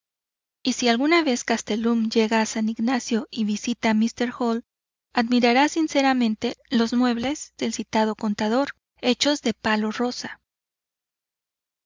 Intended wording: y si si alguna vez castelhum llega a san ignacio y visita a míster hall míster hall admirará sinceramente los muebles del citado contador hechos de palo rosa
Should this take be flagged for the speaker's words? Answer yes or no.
yes